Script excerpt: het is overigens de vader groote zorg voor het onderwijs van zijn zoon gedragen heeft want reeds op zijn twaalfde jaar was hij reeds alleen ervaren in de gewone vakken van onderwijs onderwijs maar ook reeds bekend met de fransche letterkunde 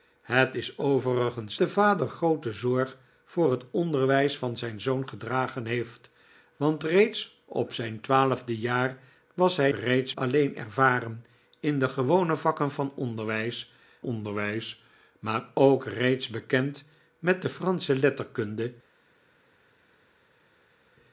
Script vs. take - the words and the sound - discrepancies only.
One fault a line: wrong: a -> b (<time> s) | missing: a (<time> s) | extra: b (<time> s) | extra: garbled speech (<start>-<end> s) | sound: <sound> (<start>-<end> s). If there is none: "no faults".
no faults